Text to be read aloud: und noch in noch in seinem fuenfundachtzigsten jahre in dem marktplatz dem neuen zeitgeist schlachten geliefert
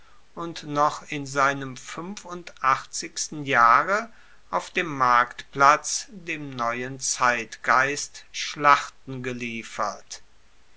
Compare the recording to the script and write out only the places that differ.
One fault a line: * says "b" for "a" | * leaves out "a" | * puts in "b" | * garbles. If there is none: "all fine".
* leaves out "noch in"
* says "auf" for "in"